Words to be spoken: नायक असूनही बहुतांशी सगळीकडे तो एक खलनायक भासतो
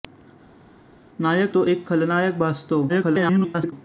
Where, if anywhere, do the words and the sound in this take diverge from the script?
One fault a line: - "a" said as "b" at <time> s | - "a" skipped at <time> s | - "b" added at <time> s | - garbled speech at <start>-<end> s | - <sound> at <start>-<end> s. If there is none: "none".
- "असूनही बहुतांशी सगळीकडे" skipped at 1.5 s
- garbled speech at 2.9-3.7 s